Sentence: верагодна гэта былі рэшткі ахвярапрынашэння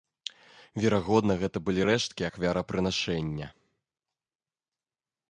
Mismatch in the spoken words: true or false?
false